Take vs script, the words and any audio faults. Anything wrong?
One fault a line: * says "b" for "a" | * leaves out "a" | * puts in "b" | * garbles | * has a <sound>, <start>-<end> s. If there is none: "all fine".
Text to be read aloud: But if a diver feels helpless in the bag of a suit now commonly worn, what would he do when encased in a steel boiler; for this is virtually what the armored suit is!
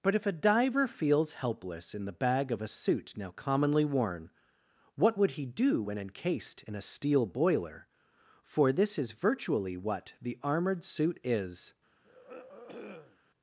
* has a throat clearing, 12.0-13.2 s